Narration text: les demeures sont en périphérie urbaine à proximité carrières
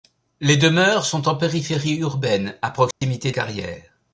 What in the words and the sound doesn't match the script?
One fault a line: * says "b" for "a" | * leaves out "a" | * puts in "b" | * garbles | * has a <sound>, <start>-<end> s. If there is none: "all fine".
* has a dropout, 2.9-3.0 s